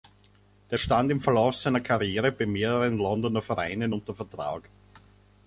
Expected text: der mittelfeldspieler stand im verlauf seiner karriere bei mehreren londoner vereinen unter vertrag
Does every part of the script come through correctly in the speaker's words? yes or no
no